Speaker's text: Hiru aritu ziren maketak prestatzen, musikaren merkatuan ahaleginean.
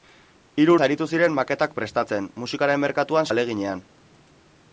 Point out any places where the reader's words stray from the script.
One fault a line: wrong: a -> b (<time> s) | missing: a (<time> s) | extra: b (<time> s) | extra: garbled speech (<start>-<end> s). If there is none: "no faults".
no faults